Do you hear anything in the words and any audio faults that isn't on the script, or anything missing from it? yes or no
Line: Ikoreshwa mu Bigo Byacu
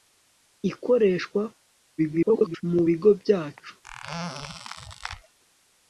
yes